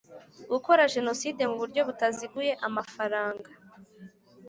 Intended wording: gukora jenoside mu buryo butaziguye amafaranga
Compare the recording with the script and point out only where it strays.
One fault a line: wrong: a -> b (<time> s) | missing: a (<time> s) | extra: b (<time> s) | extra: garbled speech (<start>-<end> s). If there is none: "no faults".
no faults